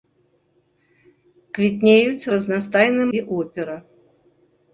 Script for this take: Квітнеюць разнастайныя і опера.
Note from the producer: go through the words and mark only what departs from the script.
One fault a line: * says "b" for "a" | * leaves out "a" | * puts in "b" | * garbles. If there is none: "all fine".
all fine